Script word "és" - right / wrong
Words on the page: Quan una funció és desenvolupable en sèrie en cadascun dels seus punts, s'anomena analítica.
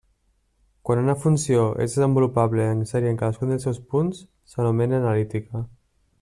right